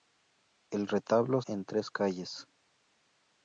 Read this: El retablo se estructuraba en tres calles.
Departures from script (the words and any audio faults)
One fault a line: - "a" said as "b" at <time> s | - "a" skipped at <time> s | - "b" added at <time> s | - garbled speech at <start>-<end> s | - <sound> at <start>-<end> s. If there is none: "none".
- "se estructuraba" skipped at 1.4 s